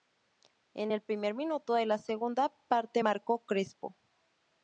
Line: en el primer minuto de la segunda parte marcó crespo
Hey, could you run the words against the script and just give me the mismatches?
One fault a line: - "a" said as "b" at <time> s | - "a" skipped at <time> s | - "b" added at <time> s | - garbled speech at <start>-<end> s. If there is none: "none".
none